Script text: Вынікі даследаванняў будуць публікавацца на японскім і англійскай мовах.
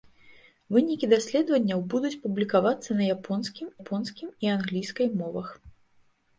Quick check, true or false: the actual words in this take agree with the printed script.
false